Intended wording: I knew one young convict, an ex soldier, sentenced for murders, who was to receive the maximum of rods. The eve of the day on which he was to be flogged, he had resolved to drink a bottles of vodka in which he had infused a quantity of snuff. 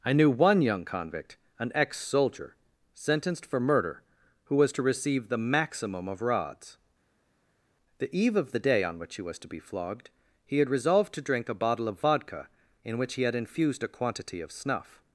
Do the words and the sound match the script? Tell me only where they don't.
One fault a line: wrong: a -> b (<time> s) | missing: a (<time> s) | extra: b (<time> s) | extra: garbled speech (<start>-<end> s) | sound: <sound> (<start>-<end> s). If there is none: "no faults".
wrong: murders -> murder (3.6 s)
wrong: bottles -> bottle (11.5 s)